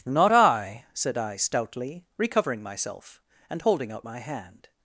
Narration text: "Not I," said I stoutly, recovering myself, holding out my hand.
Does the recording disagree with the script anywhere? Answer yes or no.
yes